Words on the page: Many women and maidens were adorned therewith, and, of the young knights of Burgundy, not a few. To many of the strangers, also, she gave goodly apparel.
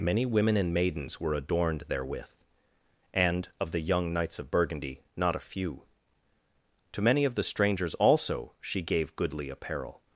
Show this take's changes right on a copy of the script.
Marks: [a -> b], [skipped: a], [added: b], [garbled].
Many women and maidens were adorned therewith, and, of the young knights of Burgundy, not a few. To many of the strangers, also, she gave goodly apparel.